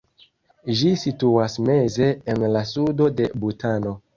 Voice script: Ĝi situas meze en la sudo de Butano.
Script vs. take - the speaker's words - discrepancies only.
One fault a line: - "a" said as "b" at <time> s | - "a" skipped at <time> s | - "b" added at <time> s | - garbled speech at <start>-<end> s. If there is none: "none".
none